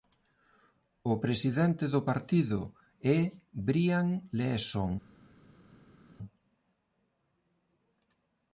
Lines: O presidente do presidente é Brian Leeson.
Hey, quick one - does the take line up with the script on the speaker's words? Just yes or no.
no